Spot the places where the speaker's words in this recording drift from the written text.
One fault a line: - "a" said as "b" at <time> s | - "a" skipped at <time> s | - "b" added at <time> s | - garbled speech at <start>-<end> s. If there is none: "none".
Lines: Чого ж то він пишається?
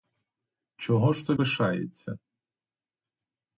- "він" skipped at 1.4 s